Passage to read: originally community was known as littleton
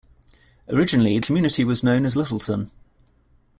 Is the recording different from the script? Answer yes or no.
no